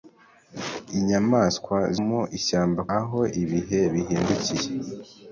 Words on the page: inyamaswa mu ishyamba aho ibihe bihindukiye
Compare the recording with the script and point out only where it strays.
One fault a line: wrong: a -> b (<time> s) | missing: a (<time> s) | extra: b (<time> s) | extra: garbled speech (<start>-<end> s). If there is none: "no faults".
no faults